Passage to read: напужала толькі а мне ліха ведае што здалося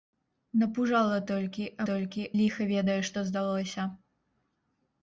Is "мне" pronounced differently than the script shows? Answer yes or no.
yes